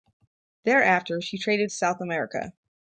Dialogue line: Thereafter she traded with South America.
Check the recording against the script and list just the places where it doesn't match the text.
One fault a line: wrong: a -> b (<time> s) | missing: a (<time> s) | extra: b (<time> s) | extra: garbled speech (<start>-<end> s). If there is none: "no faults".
missing: with (1.7 s)